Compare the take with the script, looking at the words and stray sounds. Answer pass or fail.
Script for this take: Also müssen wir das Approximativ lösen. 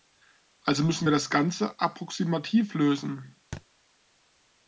fail